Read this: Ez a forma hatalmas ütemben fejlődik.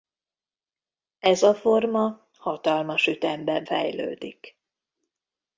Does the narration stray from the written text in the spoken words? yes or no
no